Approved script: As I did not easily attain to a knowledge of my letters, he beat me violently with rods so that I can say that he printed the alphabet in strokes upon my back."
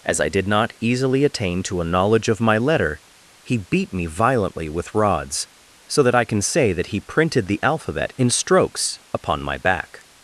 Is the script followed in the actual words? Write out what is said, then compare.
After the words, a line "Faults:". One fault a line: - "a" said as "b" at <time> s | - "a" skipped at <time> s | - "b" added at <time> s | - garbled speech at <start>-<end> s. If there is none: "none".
As I did not easily attain to a knowledge of my letter, he beat me violently with rods so that I can say that he printed the alphabet in strokes upon my back."
Faults:
- "letters" said as "letter" at 2.6 s